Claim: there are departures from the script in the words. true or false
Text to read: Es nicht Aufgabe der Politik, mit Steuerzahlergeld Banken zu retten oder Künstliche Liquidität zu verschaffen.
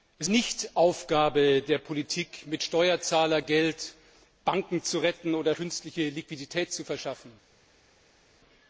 false